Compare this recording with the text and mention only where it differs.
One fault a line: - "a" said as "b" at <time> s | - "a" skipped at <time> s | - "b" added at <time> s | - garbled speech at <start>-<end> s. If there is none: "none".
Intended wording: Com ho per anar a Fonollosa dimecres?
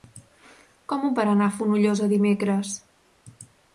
none